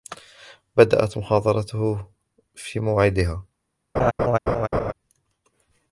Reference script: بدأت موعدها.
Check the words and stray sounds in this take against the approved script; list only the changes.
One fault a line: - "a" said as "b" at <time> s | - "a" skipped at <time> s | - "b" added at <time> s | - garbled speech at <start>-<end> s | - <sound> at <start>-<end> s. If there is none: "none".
- "محاضرته في" added at 1.2 s
- laugh at 4.0-4.9 s